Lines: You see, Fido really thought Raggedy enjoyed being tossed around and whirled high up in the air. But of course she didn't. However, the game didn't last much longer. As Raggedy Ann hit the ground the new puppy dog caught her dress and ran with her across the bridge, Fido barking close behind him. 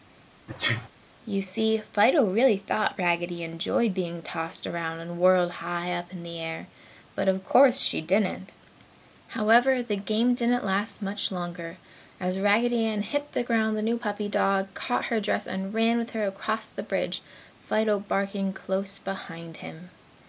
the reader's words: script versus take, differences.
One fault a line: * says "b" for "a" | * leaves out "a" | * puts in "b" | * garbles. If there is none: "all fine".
all fine